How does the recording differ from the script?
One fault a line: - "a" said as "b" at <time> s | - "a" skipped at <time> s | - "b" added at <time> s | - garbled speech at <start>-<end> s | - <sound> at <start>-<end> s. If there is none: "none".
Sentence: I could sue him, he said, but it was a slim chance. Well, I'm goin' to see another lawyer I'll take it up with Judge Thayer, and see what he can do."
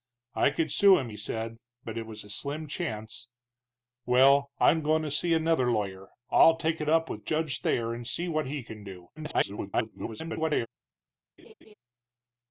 - garbled speech at 9.2-10.7 s
- laugh at 11.4-11.7 s